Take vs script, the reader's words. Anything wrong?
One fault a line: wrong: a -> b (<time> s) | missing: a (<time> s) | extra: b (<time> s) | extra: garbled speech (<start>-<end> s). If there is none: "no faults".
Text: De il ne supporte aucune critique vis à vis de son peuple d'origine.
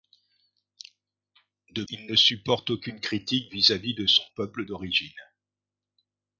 no faults